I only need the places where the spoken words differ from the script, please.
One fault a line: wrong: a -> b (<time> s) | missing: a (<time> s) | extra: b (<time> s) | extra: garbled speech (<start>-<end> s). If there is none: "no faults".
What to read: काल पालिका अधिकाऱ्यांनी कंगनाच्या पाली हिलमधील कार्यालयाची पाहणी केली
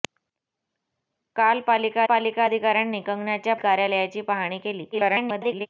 extra: पालिका (2.0 s)
missing: पाली हिलमधील (3.6 s)
extra: garbled speech (4.9-5.7 s)